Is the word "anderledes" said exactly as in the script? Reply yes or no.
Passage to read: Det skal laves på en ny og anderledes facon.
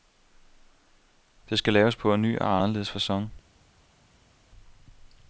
yes